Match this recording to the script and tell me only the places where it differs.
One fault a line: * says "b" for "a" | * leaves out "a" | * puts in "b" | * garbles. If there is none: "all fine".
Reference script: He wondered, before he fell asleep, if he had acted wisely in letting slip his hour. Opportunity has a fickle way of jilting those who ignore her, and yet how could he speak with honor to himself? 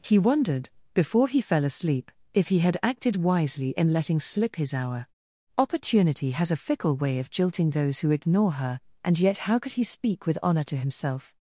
all fine